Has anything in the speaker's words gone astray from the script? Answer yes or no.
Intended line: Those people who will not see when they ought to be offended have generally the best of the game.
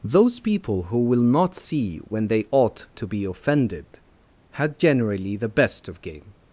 yes